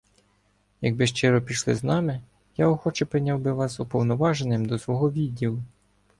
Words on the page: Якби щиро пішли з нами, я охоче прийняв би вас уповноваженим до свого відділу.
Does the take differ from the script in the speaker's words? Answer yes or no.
no